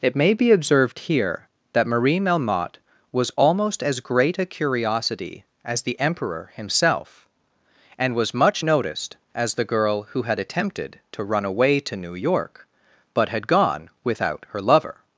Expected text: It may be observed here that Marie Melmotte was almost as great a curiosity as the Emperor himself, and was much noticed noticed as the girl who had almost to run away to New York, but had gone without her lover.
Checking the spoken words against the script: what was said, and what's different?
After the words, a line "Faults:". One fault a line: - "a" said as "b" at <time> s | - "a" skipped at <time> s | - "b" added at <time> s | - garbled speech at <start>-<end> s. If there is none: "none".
It may be observed here that Marie Melmotte was almost as great a curiosity as the Emperor himself, and was much noticed as the girl who had attempted to run away to New York, but had gone without her lover.
Faults:
- "noticed" skipped at 9.2 s
- "almost" said as "attempted" at 10.4 s